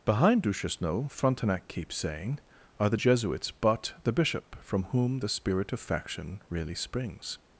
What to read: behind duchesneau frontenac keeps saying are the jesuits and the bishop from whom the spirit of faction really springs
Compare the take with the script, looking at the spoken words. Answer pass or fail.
fail